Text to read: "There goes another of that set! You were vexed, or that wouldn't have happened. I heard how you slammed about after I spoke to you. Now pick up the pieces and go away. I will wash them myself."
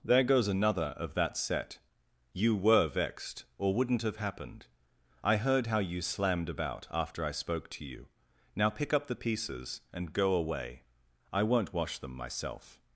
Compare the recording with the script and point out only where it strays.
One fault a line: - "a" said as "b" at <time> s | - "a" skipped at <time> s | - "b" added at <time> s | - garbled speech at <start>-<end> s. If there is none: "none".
- "that" skipped at 3.8 s
- "will" said as "won't" at 11.4 s